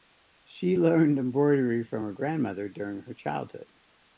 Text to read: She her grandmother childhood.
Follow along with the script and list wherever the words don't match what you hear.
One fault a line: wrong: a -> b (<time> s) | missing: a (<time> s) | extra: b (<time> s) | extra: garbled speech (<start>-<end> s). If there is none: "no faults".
extra: learned embroidery from (0.7 s)
extra: during her (2.7 s)